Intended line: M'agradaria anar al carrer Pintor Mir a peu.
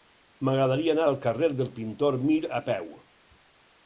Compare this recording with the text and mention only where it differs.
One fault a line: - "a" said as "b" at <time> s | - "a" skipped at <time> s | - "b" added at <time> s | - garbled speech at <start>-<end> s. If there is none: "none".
- "del" added at 1.6 s